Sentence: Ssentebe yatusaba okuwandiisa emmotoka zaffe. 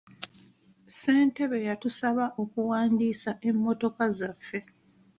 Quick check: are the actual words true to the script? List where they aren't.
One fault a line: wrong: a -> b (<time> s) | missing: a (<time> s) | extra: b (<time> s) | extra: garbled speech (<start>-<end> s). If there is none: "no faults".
no faults